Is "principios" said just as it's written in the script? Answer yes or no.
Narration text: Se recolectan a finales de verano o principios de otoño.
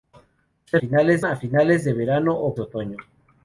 no